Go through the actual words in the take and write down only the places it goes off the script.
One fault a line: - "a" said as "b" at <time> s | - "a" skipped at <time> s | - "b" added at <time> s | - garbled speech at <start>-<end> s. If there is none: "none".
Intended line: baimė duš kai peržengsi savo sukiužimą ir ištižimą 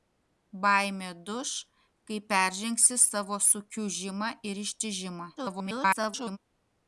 - garbled speech at 5.4-6.4 s